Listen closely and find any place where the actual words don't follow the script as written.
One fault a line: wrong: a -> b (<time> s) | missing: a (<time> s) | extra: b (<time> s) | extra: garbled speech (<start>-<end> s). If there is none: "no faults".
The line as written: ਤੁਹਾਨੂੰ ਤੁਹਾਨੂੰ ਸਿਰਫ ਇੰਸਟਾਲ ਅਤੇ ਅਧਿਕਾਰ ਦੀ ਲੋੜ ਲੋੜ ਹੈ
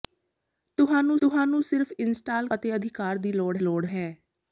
no faults